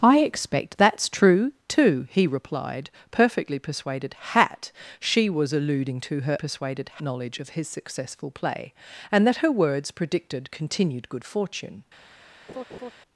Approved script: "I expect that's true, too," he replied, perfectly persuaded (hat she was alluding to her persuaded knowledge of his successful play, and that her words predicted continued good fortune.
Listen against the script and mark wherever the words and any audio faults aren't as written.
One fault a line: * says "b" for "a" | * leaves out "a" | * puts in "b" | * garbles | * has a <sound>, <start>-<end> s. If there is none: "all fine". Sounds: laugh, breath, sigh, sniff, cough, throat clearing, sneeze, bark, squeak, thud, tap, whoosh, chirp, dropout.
* has a laugh, 12.5-12.9 s